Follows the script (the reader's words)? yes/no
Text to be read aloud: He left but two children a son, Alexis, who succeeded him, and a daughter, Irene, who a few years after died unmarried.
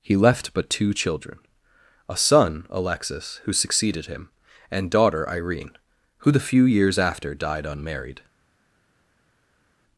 no